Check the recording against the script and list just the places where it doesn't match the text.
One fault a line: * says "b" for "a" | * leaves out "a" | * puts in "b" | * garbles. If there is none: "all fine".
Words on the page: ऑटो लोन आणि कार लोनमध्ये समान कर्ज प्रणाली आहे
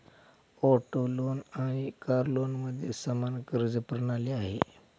all fine